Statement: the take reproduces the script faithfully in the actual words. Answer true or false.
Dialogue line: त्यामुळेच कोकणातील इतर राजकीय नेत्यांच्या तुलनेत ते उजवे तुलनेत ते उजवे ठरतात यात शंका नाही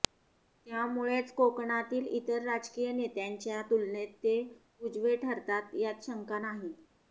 false